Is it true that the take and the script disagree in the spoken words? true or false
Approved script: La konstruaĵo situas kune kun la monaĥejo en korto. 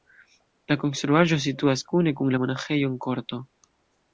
false